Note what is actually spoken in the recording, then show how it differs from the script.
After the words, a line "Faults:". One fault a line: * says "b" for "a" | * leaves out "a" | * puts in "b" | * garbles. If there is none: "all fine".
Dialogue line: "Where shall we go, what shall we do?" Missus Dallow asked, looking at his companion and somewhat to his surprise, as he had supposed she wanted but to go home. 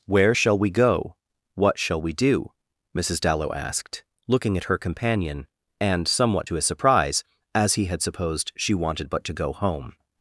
"Where shall we go, what shall we do?" Missus Dallow asked, looking at her companion and somewhat to his surprise, as he had supposed she wanted but to go home.
Faults:
* says "her" for "his"